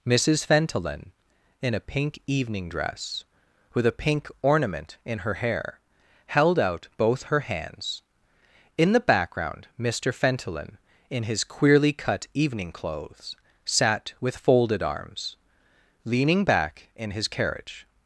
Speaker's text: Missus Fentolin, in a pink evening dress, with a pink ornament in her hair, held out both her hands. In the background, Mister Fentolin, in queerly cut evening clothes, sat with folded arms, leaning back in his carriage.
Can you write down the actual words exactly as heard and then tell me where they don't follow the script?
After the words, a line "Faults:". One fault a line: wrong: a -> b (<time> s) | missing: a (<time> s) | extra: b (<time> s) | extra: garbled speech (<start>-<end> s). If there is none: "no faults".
Missus Fentolin, in a pink evening dress, with a pink ornament in her hair, held out both her hands. In the background, Mister Fentolin, in his queerly cut evening clothes, sat with folded arms, leaning back in his carriage.
Faults:
extra: his (11.2 s)